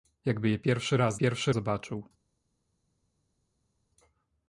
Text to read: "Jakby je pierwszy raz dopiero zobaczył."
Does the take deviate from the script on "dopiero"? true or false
true